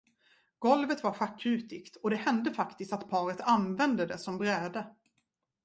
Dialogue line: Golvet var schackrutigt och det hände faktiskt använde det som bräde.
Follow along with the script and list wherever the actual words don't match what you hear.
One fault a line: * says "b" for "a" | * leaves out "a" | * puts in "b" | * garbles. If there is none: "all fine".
* puts in "att paret"